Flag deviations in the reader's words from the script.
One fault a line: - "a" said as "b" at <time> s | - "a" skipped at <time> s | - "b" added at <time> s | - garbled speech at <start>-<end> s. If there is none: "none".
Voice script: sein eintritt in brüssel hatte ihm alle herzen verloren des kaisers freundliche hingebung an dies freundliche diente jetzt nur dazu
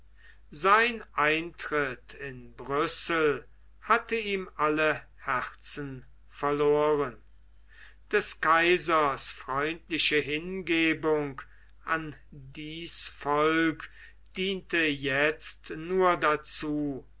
- "freundliche" said as "volk" at 13.1 s